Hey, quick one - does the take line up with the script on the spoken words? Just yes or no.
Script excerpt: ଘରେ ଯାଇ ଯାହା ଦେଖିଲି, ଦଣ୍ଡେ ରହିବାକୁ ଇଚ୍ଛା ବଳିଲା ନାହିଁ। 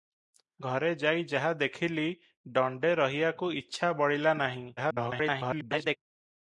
no